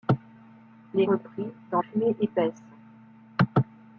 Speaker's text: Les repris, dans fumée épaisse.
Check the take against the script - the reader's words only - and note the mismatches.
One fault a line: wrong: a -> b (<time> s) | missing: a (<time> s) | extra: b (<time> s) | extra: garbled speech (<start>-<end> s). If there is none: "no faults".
no faults